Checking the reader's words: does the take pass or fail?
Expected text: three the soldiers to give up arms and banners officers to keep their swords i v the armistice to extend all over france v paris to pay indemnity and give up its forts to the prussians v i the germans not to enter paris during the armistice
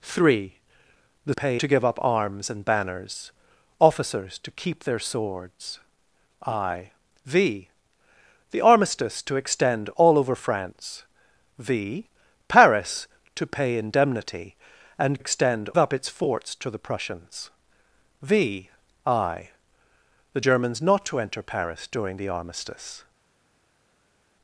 fail